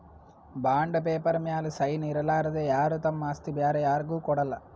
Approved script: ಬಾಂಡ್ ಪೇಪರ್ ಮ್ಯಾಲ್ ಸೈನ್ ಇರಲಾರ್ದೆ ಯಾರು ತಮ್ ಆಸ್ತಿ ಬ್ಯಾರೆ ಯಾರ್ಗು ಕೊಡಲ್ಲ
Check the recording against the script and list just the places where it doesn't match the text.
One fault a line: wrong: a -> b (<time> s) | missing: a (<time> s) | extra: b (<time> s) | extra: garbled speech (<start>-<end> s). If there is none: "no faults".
no faults